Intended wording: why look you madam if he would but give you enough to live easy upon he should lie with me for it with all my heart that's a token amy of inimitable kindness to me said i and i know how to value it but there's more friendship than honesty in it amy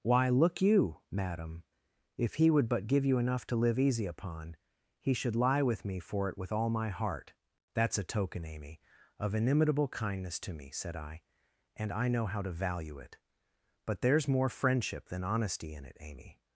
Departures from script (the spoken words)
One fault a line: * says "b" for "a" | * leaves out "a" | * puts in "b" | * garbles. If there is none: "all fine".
all fine